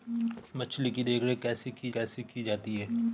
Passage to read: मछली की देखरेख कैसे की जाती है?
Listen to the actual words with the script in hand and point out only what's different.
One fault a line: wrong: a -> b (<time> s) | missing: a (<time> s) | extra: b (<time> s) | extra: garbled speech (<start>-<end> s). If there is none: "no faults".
extra: कैसे की (1.9 s)